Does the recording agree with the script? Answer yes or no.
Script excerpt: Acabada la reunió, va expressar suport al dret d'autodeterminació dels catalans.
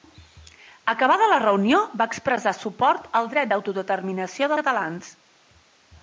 no